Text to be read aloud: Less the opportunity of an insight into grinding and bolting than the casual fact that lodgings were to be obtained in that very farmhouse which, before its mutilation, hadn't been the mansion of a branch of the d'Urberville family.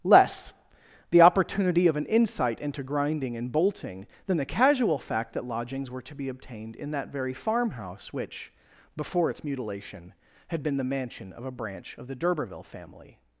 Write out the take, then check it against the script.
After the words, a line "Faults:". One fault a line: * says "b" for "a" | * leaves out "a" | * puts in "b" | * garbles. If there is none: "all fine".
Less the opportunity of an insight into grinding and bolting than the casual fact that lodgings were to be obtained in that very farmhouse which, before its mutilation, had been the mansion of a branch of the d'Urberville family.
Faults:
* says "had" for "hadn't"